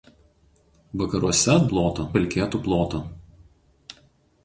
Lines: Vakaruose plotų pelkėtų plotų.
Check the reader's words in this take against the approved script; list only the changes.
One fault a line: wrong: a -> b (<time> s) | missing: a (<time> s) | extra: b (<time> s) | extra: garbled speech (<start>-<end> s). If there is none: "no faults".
no faults